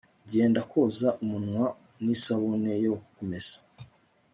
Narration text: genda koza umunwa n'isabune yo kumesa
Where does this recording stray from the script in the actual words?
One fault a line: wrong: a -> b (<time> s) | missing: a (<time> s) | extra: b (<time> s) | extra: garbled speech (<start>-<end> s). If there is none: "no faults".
no faults